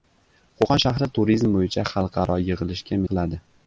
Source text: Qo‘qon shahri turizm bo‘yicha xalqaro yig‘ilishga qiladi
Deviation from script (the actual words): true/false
false